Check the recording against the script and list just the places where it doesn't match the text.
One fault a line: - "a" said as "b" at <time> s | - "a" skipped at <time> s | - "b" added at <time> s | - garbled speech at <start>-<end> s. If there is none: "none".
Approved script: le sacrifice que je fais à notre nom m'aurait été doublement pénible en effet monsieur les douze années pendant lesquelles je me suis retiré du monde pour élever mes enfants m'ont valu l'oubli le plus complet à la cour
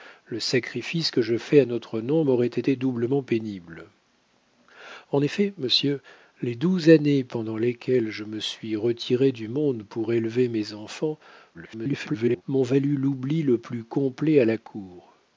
- garbled speech at 11.5-12.4 s